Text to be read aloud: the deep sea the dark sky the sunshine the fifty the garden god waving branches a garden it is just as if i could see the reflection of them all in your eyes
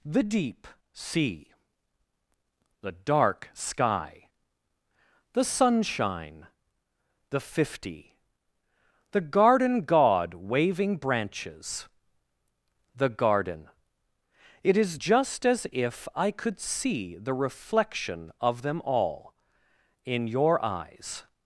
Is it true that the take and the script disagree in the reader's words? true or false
true